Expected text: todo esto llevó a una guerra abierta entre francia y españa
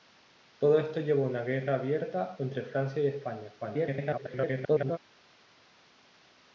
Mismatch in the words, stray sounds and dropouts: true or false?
true